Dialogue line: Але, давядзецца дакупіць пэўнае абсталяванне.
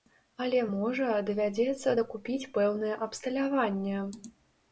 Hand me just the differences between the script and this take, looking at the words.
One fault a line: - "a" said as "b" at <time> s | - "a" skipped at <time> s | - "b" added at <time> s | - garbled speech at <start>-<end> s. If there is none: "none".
- "можа" added at 0.8 s